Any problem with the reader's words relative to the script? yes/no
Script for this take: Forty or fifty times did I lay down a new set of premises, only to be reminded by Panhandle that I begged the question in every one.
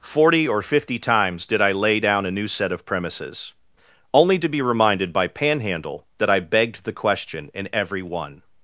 no